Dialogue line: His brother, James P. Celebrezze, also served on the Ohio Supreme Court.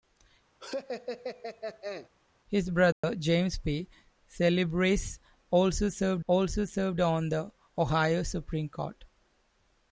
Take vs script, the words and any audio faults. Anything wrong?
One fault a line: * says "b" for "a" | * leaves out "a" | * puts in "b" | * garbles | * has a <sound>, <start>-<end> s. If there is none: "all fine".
* has a laugh, 0.6-2.1 s
* has a dropout, 2.9-3.0 s
* puts in "also served"